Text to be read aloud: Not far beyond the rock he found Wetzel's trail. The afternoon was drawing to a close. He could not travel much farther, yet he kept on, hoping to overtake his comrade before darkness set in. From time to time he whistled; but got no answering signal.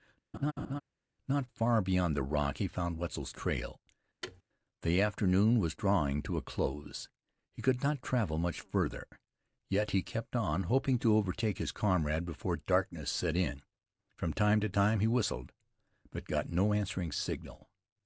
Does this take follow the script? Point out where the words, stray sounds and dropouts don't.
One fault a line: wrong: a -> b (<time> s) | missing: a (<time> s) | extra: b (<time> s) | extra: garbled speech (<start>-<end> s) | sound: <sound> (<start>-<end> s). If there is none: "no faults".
sound: laugh (0.3-0.8 s)
sound: thud (4.2-4.4 s)